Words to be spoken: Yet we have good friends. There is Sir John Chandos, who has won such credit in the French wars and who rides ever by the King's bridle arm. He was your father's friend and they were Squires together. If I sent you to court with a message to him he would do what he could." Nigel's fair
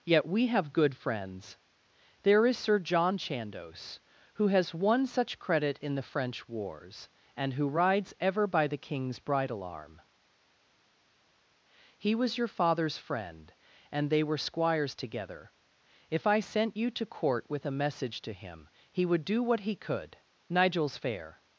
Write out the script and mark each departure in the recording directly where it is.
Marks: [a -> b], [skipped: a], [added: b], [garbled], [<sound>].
Yet we have good friends. There is Sir John Chandos, who has won such credit in the French wars and who rides ever by the King's bridle arm. He was your father's friend and they were Squires together. If I sent you to court with a message to him he would do what he could." Nigel's fair